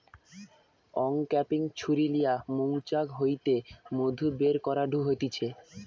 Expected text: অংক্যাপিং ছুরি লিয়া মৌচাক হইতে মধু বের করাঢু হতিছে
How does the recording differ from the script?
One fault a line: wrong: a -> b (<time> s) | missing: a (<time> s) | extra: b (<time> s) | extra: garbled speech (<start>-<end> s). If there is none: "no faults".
no faults